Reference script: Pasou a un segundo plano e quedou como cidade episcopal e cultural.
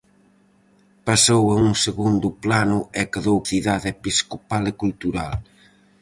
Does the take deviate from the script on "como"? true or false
true